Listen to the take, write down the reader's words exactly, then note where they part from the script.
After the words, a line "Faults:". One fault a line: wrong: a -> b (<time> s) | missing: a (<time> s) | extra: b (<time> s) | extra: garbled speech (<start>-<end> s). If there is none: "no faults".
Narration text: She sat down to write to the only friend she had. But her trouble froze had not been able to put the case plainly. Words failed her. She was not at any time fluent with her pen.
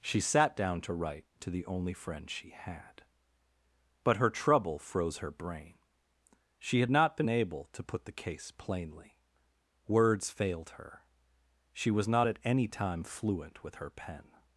She sat down to write to the only friend she had. But her trouble froze her brain. She had not been able to put the case plainly. Words failed her. She was not at any time fluent with her pen.
Faults:
extra: her brain She (5.2 s)